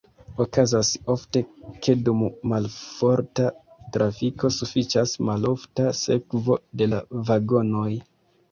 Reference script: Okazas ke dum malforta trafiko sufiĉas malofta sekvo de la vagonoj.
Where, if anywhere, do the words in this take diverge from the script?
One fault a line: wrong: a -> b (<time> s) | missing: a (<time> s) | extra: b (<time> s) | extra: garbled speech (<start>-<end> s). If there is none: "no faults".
extra: ofte (1.1 s)